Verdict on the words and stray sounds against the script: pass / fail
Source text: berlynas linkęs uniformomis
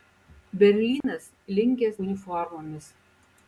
fail